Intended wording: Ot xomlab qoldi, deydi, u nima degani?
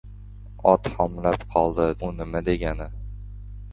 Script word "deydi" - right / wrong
wrong